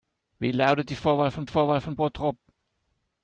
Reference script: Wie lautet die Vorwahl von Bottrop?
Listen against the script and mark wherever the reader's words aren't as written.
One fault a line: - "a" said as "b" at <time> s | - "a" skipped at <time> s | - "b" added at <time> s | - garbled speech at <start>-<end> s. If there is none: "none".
- "Vorwahl von" added at 1.5 s